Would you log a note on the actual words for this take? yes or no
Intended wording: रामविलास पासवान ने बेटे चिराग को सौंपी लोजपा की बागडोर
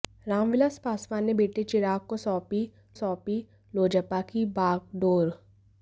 yes